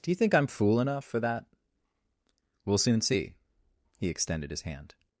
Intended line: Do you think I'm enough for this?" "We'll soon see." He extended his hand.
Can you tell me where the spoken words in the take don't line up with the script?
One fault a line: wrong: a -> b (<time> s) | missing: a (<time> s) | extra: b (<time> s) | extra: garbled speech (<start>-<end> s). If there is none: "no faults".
extra: fool (0.5 s)
wrong: this -> that (1.2 s)